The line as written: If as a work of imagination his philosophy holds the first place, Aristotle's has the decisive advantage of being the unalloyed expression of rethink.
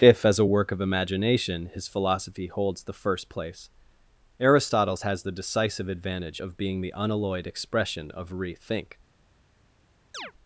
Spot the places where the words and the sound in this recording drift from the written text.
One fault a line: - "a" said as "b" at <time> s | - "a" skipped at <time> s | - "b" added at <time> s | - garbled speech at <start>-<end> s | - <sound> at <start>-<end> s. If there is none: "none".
- chirp at 10.1-10.3 s